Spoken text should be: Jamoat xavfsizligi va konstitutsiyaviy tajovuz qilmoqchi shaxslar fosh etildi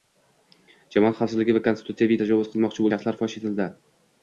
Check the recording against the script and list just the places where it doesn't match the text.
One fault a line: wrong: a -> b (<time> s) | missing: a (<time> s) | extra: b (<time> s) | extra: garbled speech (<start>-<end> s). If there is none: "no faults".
no faults